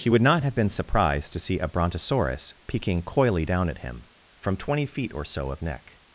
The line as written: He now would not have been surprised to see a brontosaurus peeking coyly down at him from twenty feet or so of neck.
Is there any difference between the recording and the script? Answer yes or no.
yes